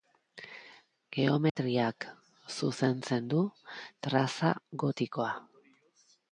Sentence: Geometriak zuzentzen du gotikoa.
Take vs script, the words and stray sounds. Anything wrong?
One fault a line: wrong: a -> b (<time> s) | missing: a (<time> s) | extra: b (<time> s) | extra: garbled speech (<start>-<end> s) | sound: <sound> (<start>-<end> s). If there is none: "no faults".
sound: dropout (1.5-1.6 s)
extra: traza (4.1 s)